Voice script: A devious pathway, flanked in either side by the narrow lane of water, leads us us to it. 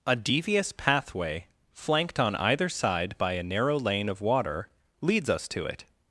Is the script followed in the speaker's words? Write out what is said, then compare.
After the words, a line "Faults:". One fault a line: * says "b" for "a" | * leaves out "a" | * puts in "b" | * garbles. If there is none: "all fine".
A devious pathway, flanked on either side by a narrow lane of water, leads us to it.
Faults:
* says "on" for "in"
* says "a" for "the"
* leaves out "us"